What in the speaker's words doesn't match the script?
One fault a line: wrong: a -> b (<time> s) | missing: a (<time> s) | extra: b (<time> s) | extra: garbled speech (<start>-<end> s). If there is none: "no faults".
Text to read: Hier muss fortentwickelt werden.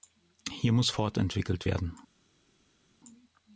no faults